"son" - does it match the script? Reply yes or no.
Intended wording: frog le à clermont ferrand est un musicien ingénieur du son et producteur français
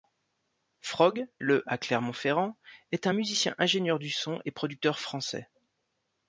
yes